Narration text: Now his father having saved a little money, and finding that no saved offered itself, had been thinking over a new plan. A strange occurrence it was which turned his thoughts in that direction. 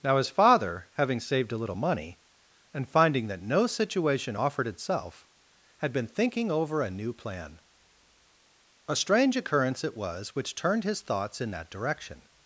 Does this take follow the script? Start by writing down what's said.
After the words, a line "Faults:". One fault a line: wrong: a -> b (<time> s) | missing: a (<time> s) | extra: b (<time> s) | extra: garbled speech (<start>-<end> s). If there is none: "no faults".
Now his father having saved a little money, and finding that no situation offered itself, had been thinking over a new plan. A strange occurrence it was which turned his thoughts in that direction.
Faults:
wrong: saved -> situation (3.7 s)